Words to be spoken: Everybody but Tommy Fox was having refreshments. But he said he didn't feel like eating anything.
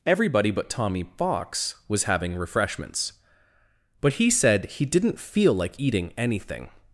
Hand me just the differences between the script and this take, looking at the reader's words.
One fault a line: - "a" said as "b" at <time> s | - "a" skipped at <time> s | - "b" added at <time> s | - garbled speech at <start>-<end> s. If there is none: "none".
none